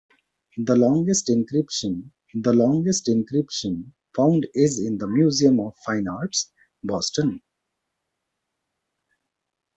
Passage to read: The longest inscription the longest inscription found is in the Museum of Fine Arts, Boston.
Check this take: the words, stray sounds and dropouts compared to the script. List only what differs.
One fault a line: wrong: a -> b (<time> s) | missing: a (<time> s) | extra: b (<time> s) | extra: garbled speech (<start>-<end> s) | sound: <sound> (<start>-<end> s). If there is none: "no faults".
no faults